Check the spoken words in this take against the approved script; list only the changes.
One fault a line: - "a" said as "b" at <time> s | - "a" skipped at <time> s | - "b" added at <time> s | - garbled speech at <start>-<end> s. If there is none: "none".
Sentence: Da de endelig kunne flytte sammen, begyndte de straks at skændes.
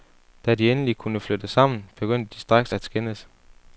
none